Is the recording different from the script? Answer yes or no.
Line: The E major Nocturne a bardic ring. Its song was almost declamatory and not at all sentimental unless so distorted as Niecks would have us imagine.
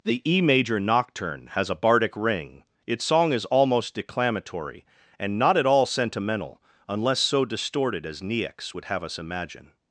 yes